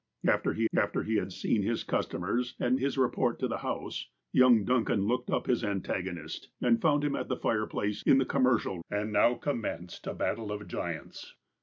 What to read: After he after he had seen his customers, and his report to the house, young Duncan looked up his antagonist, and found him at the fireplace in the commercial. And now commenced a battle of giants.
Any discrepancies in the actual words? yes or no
no